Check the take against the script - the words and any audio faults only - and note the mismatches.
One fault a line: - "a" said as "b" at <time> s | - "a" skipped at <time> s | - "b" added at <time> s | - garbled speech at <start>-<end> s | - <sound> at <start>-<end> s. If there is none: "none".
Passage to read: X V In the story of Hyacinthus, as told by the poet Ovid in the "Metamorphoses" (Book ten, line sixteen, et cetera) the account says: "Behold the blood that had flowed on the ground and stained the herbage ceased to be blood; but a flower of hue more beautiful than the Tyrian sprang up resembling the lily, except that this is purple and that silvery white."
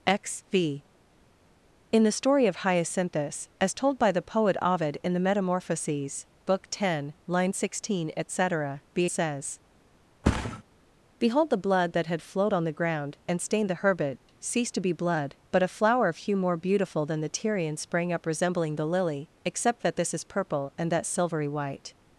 - "account" skipped at 9.1 s
- thud at 10.2-10.6 s
- dropout at 14.2-14.3 s